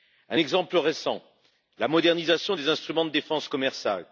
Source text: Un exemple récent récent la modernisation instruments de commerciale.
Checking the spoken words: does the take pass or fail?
fail